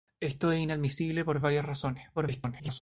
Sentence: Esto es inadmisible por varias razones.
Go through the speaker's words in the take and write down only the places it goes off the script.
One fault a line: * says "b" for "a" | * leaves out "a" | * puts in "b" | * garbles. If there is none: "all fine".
* garbles